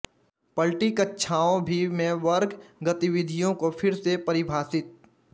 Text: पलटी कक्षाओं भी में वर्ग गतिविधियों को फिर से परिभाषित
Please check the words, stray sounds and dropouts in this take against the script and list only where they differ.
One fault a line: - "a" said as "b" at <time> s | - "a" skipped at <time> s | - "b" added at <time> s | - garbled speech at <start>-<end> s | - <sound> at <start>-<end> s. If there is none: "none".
none